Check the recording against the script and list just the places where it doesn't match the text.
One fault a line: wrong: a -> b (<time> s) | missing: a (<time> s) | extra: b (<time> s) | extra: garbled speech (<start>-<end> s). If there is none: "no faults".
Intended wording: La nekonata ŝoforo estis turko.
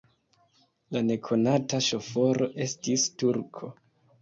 no faults